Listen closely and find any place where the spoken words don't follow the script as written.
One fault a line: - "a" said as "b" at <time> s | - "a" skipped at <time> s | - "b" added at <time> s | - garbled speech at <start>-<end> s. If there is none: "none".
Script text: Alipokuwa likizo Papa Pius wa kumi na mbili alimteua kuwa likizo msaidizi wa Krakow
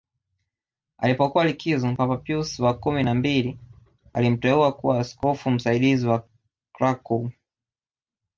- "likizo" said as "askofu" at 5.0 s